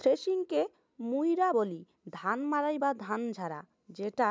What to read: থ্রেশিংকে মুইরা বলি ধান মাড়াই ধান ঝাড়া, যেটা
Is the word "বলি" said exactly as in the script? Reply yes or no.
yes